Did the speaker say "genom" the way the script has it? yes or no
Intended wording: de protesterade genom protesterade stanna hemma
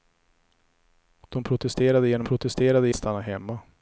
yes